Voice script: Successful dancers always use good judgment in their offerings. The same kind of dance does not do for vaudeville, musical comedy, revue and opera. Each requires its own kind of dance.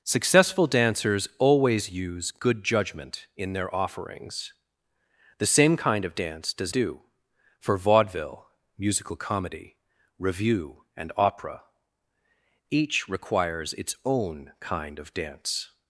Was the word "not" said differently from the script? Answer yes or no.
yes